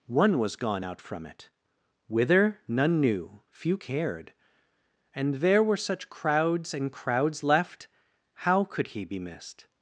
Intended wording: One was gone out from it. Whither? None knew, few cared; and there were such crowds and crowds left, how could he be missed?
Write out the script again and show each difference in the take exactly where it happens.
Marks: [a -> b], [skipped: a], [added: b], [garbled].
One was gone out from it. Whither? None knew, few cared; and there were such crowds and crowds left, how could he be missed?